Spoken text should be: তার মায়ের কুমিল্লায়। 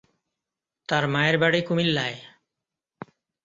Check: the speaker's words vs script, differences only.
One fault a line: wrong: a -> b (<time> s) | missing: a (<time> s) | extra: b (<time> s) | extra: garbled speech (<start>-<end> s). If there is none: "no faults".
extra: বাড়ি (1.4 s)